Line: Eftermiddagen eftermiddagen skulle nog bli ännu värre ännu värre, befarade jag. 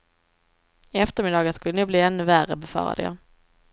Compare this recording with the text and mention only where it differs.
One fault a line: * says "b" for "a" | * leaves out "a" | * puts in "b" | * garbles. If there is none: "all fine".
* leaves out "eftermiddagen"
* leaves out "ännu värre"